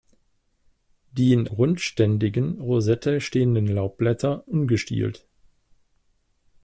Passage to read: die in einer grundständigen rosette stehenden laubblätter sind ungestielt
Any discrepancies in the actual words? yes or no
yes